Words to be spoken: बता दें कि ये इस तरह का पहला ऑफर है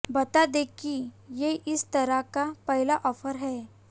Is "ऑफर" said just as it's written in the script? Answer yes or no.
yes